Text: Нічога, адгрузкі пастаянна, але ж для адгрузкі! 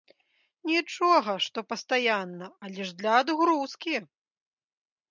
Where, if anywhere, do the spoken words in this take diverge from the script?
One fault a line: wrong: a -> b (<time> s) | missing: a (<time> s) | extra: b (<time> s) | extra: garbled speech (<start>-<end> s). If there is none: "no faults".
wrong: адгрузкі -> што (1.5 s)